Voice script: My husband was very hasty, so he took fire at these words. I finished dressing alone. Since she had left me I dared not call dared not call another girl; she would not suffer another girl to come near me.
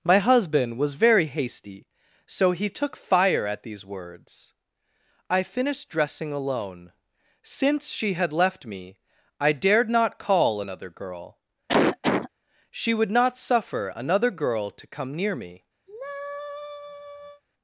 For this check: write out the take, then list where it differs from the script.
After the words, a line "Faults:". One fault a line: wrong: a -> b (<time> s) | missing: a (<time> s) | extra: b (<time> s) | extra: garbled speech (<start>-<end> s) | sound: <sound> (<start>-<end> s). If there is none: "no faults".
My husband was very hasty, so he took fire at these words. I finished dressing alone. Since she had left me I dared not call another girl; she would not suffer another girl to come near me.
Faults:
missing: dared not call (10.6 s)
sound: cough (11.7-12.3 s)
sound: sigh (15.9-17.4 s)